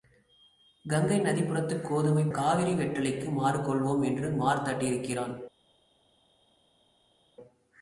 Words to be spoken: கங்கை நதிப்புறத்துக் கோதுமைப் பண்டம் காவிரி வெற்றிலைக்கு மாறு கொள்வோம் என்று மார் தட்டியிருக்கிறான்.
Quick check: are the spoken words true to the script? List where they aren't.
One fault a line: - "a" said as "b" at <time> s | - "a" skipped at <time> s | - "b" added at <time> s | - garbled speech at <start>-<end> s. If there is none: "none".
- "பண்டம்" skipped at 2.3 s